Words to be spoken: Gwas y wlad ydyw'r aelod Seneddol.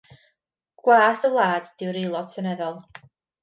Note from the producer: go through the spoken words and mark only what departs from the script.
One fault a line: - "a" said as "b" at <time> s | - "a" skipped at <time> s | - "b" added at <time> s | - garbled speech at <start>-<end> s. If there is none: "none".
none